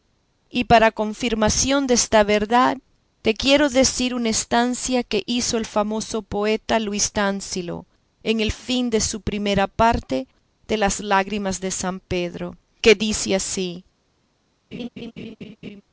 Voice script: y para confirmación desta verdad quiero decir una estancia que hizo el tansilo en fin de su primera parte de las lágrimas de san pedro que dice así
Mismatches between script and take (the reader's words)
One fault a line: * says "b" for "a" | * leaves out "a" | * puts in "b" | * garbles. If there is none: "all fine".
* puts in "te"
* puts in "famoso poeta luis"
* puts in "el"